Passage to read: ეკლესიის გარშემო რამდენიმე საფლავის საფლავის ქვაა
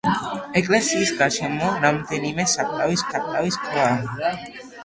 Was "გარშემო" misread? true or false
false